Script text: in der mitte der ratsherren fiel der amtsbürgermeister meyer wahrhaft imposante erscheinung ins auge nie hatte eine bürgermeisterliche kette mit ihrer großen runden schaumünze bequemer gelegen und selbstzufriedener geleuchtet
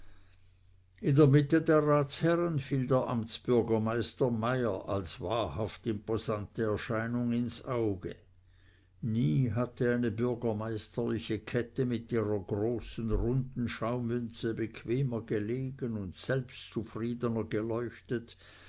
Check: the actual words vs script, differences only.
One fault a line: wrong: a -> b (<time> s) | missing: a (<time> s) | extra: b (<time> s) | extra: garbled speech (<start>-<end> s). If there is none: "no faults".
extra: als (4.9 s)